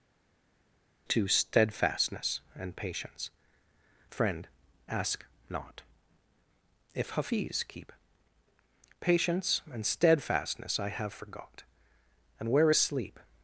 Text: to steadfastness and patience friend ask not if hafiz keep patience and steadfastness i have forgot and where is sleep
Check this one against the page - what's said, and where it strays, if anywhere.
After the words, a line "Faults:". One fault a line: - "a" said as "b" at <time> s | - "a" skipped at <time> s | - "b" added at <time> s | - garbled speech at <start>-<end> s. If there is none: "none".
to steadfastness and patience friend ask not if hafiz keep patience and steadfastness i have forgot and where is sleep
Faults:
none